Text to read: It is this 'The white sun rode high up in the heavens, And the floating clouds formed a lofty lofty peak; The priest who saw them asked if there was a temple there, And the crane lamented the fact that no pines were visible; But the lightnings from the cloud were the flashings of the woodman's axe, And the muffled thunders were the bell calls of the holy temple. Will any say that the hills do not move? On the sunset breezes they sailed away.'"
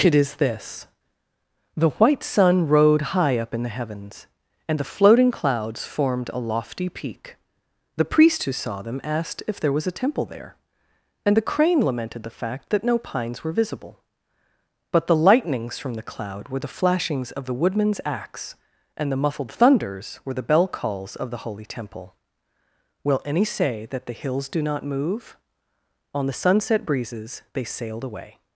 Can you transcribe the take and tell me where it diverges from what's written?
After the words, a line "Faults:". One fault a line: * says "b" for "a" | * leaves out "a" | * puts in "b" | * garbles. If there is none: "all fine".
It is this 'The white sun rode high up in the heavens, And the floating clouds formed a lofty peak; The priest who saw them asked if there was a temple there, And the crane lamented the fact that no pines were visible; But the lightnings from the cloud were the flashings of the woodman's axe, And the muffled thunders were the bell calls of the holy temple. Will any say that the hills do not move? On the sunset breezes they sailed away.'"
Faults:
* leaves out "lofty"